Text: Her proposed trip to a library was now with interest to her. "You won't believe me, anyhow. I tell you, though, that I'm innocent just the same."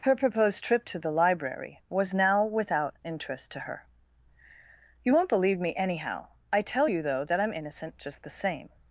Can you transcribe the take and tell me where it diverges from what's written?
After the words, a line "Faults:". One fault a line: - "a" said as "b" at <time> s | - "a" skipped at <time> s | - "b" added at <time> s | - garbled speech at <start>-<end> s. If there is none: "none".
Her proposed trip to the library was now without interest to her. "You won't believe me, anyhow. I tell you, though, that I'm innocent just the same."
Faults:
- "a" said as "the" at 1.0 s
- "with" said as "without" at 2.4 s